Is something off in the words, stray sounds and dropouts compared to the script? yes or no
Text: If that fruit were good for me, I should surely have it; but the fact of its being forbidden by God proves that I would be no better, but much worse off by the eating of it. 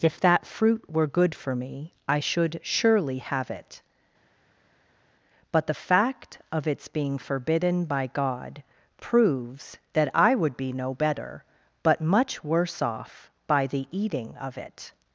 no